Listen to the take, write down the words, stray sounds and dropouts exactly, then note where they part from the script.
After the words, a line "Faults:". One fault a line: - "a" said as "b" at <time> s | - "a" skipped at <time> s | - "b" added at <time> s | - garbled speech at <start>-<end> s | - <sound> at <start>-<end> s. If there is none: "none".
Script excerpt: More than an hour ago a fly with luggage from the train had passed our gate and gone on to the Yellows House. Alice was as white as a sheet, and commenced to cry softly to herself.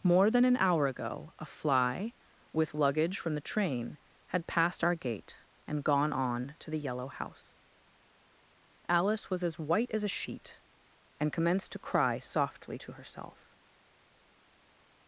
More than an hour ago a fly with luggage from the train had passed our gate and gone on to the Yellow House. Alice was as white as a sheet, and commenced to cry softly to herself.
Faults:
- "Yellows" said as "Yellow" at 6.8 s